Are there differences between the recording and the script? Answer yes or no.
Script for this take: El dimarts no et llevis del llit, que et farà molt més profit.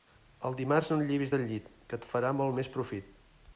no